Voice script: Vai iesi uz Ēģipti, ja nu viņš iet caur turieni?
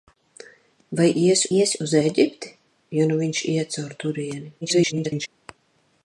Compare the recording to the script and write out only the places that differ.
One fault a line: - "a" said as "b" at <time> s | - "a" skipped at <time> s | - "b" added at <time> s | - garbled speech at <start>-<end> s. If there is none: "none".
- "iesi" added at 1.6 s
- garbled speech at 4.6-5.3 s